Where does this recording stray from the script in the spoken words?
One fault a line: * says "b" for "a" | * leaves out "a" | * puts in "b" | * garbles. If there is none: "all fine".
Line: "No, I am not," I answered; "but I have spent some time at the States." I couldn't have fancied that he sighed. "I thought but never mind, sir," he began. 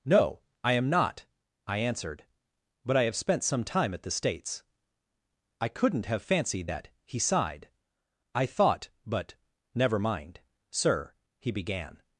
all fine